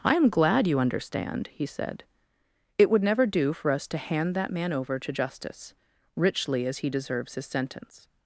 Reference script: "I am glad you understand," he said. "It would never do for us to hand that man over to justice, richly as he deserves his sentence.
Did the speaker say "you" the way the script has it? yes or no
yes